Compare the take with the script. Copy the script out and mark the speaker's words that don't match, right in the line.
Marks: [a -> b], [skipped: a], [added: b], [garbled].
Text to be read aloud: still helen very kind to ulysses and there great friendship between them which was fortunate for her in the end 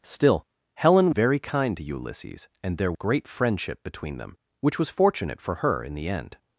still helen very kind to ulysses and there great friendship between them which was fortunate for her in the end